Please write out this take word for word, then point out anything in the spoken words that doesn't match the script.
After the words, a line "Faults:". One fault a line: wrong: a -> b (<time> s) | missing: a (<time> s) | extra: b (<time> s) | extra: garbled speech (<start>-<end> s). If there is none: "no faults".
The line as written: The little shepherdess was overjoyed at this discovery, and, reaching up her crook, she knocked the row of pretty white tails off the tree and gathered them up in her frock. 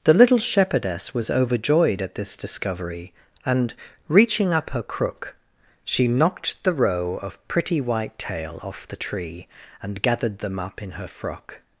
The little shepherdess was overjoyed at this discovery, and, reaching up her crook, she knocked the row of pretty white tail off the tree and gathered them up in her frock.
Faults:
wrong: tails -> tail (8.2 s)